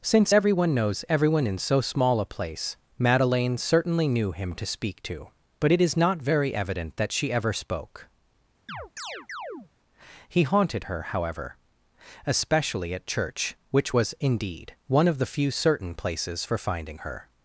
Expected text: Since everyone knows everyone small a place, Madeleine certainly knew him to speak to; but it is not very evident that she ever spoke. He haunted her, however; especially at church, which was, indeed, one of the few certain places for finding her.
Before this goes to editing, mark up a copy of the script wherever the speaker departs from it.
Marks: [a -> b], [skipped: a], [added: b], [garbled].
Since everyone knows everyone [added: in so] small a place, Madeleine certainly knew him to speak to; but it is not very evident that she ever spoke. He haunted her, however; especially at church, which was, indeed, one of the few certain places for finding her.